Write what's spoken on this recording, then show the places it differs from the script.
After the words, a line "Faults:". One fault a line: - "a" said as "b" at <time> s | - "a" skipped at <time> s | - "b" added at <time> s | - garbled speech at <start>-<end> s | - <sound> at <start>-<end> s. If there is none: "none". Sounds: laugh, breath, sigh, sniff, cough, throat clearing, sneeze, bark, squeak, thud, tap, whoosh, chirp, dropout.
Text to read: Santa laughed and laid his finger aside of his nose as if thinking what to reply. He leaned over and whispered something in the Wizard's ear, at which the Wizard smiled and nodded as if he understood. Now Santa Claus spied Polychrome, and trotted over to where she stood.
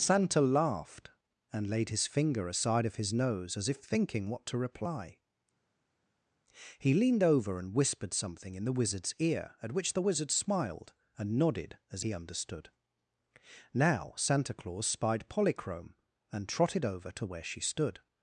Santa laughed and laid his finger aside of his nose as if thinking what to reply. He leaned over and whispered something in the Wizard's ear, at which the Wizard smiled and nodded as he understood. Now Santa Claus spied Polychrome, and trotted over to where she stood.
Faults:
- "if" skipped at 12.0 s